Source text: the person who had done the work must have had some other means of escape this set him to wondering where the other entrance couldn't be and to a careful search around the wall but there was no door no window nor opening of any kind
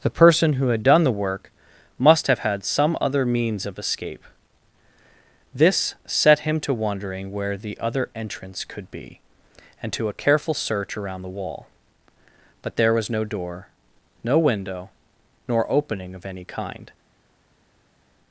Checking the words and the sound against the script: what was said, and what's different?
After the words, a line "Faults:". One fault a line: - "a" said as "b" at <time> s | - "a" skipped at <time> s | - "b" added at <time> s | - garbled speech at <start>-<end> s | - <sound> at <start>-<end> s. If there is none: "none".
the person who had done the work must have had some other means of escape this set him to wondering where the other entrance could be and to a careful search around the wall but there was no door no window nor opening of any kind
Faults:
- "couldn't" said as "could" at 8.7 s